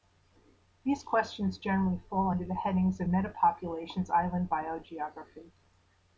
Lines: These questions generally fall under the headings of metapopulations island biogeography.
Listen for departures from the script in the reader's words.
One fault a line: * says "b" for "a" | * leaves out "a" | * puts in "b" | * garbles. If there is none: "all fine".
all fine